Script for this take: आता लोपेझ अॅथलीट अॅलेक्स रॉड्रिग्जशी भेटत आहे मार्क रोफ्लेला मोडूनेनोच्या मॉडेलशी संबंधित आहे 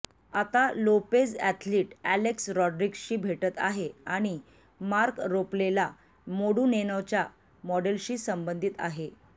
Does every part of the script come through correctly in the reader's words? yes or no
no